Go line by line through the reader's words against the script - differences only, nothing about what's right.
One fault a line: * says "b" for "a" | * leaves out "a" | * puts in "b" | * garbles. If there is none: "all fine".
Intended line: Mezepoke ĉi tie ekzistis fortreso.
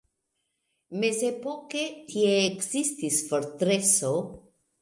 * leaves out "ĉi"